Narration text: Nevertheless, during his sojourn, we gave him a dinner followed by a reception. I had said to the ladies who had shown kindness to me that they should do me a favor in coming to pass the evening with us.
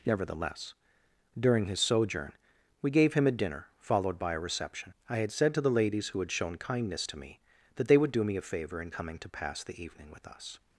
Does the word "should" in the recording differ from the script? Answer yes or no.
yes